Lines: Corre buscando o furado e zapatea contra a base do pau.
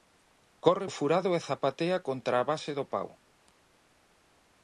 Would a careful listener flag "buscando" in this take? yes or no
yes